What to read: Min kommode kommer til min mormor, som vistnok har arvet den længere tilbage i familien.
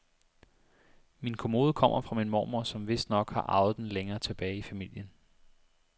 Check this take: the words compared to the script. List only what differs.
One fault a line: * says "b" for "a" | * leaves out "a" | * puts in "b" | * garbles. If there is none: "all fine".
* says "fra" for "til"